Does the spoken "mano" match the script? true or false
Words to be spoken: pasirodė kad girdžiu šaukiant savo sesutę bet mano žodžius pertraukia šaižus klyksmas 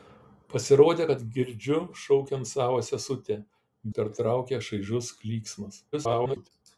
false